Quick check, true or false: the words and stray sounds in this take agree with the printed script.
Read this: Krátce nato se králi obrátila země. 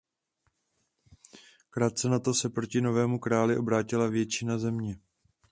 false